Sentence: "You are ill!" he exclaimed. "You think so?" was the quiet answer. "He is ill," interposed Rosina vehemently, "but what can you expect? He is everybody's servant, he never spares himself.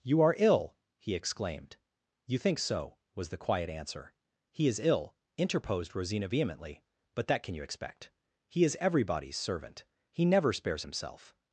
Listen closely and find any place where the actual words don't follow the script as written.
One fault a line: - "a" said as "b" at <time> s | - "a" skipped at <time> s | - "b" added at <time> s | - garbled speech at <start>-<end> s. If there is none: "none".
- "what" said as "that" at 7.3 s